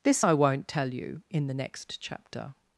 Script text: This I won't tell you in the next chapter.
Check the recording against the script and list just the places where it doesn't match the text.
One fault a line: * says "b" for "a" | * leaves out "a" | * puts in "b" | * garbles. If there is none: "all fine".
all fine